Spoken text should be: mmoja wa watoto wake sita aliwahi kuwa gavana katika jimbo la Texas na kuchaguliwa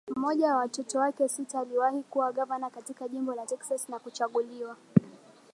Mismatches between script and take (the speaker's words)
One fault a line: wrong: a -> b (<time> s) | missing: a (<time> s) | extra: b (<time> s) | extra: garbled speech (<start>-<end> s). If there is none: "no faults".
no faults